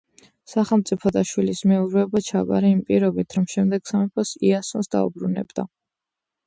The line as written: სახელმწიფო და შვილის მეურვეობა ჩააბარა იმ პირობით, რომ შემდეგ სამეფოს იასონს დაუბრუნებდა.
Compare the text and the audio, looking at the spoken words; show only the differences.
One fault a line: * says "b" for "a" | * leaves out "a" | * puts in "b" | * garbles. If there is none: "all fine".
all fine